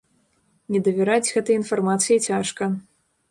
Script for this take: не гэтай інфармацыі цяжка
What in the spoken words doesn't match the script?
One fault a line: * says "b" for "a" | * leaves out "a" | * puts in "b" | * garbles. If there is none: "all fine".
* puts in "давераць"